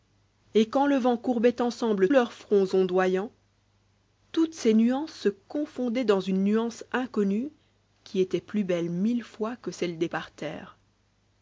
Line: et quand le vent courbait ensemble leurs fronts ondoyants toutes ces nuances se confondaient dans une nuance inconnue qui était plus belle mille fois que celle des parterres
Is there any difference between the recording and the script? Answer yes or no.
no